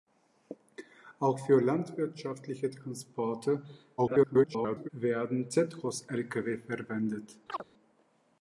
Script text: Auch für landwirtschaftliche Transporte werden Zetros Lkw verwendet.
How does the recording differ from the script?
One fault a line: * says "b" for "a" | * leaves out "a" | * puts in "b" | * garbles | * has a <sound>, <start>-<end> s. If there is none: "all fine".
* garbles
* has a chirp, 7.5-7.7 s